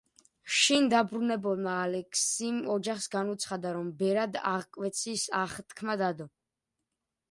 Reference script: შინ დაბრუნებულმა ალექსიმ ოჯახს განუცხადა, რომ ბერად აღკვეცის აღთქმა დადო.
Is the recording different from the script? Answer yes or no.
no